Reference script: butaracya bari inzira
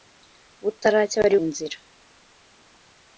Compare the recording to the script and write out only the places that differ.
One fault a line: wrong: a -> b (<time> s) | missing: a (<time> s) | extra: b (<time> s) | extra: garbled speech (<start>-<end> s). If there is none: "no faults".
no faults